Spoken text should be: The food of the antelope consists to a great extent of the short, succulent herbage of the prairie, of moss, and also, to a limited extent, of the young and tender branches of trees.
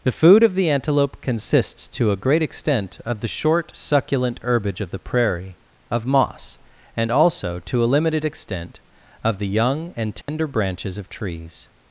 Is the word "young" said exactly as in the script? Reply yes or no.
yes